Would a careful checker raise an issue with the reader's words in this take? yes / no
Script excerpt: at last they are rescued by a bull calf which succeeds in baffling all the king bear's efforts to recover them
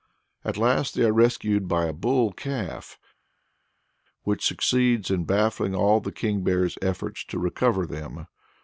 no